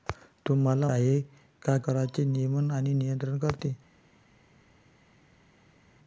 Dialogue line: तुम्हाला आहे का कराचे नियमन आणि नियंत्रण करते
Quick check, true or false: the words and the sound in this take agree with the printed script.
true